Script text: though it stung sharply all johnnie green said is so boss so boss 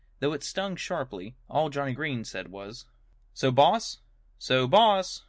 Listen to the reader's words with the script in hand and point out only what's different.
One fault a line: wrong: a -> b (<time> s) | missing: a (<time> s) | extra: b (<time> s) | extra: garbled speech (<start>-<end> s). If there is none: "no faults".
wrong: is -> was (2.5 s)